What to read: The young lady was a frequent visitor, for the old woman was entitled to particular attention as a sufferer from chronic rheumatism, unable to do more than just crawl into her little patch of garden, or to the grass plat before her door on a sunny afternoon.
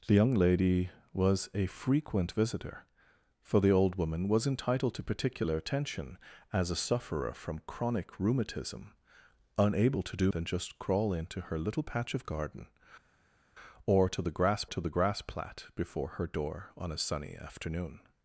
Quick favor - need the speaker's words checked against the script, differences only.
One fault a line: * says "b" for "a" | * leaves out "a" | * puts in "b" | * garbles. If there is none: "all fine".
* leaves out "more"
* puts in "to the grass"